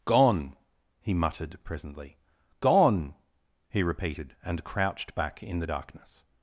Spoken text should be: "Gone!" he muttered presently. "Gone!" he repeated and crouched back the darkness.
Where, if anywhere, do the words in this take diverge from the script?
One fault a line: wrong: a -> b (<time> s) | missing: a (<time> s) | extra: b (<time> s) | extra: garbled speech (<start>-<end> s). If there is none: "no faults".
extra: in (5.4 s)